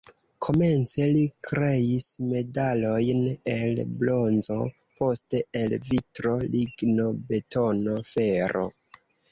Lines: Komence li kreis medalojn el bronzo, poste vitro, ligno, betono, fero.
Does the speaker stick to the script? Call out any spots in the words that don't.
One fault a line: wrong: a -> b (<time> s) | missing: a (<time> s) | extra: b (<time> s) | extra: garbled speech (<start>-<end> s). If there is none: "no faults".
extra: el (5.6 s)